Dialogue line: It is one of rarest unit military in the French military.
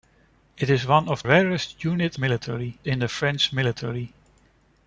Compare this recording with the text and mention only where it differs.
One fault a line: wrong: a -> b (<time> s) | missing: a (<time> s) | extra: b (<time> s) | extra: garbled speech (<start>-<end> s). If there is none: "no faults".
no faults